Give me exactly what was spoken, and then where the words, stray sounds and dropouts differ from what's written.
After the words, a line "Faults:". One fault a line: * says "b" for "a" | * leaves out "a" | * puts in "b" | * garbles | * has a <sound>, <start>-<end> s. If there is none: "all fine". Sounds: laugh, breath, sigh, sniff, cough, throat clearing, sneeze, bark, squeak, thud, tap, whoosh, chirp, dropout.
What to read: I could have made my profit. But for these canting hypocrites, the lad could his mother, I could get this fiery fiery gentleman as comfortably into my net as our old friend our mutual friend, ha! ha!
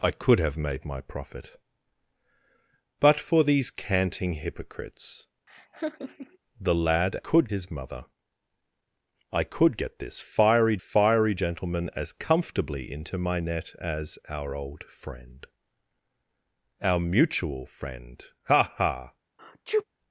I could have made my profit. But for these canting hypocrites, the lad could his mother, I could get this fiery fiery gentleman as comfortably into my net as our old friend our mutual friend, ha! ha!
Faults:
* has a laugh, 5.5-6.4 s
* has a sneeze, 19.4-19.8 s